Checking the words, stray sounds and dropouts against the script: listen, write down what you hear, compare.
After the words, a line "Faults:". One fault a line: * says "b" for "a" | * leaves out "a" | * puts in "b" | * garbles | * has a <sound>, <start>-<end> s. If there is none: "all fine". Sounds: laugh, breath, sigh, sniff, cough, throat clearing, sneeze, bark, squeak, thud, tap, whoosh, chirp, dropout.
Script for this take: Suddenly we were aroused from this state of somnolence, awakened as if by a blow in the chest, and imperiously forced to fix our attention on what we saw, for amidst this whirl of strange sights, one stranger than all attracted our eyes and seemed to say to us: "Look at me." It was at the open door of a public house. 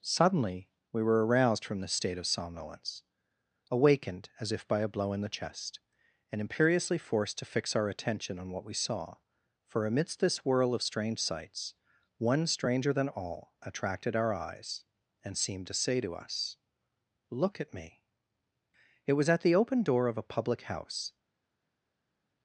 Suddenly we were aroused from this state of somnolence, awakened as if by a blow in the chest, and imperiously forced to fix our attention on what we saw, for amidst this whirl of strange sights, one stranger than all attracted our eyes and seemed to say to us: "Look at me." It was at the open door of a public house.
Faults:
all fine